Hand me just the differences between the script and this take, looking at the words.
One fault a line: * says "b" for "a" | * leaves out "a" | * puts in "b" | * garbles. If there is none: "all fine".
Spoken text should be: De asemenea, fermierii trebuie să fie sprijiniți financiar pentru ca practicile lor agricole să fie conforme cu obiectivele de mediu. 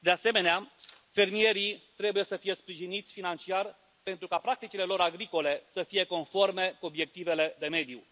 all fine